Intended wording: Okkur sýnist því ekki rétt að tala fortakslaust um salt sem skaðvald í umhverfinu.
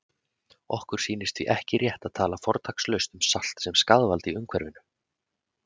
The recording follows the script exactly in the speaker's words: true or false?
true